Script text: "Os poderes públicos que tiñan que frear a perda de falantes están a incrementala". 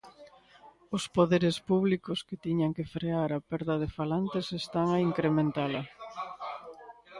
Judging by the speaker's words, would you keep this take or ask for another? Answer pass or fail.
pass